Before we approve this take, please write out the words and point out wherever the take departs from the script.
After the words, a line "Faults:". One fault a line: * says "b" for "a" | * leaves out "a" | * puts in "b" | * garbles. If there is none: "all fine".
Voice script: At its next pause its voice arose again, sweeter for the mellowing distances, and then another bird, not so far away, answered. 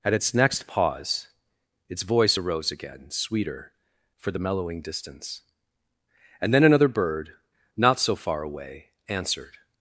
At its next pause its voice arose again, sweeter for the mellowing distance, and then another bird, not so far away, answered.
Faults:
* says "distance" for "distances"